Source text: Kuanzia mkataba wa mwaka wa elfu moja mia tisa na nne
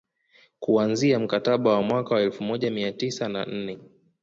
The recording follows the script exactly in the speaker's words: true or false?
true